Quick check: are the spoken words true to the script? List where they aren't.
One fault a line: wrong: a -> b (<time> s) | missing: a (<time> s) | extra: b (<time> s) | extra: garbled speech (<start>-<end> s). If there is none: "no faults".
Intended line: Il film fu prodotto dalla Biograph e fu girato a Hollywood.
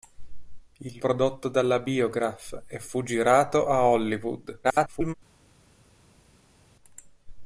missing: film fu (1.0 s)
extra: garbled speech (4.6-5.1 s)